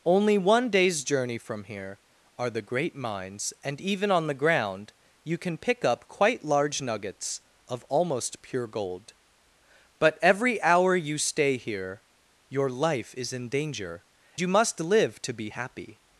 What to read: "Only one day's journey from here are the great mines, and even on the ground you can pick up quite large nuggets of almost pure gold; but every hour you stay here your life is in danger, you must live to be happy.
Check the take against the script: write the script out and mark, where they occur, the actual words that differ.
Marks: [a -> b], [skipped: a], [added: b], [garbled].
"Only one day's journey from here are the great mines, and even on the ground you can pick up quite large nuggets of almost pure gold; but every hour you stay here your life is in danger, you must live to be happy.